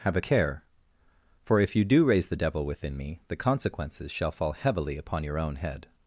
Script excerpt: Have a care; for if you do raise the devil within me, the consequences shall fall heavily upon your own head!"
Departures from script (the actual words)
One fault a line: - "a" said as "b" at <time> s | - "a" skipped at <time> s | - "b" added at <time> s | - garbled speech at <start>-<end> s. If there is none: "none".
none